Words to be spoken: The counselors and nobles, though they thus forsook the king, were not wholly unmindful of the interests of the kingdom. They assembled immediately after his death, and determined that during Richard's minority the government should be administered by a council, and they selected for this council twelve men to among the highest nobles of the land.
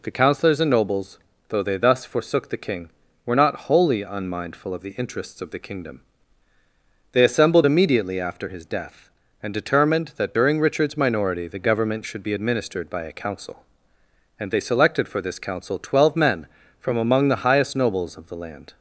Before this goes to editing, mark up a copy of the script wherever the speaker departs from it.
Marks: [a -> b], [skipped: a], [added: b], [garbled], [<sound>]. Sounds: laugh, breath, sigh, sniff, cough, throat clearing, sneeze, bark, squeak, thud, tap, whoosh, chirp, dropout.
The counselors and nobles, though they thus forsook the king, were not wholly unmindful of the interests of the kingdom. They assembled immediately after his death, and determined that during Richard's minority the government should be administered by a council, and they selected for this council twelve men [to -> from] among the highest nobles of the land.